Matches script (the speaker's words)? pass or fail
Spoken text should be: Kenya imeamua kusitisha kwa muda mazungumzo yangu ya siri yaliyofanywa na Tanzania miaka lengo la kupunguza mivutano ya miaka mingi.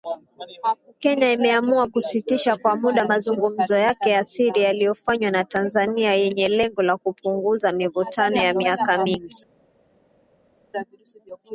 fail